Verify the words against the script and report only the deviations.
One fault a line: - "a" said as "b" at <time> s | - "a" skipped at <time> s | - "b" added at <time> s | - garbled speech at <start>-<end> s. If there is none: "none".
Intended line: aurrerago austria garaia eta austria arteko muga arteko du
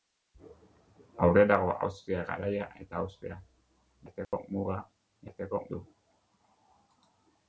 none